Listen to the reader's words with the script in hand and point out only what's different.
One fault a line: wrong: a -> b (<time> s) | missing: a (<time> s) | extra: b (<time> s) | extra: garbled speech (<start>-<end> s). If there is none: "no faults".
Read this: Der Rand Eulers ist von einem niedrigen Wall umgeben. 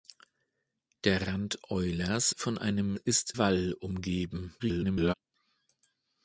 missing: ist (2.3 s)
wrong: niedrigen -> ist (2.9 s)
extra: garbled speech (4.6-5.1 s)